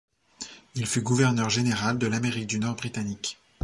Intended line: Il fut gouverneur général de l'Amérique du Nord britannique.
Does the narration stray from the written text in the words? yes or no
no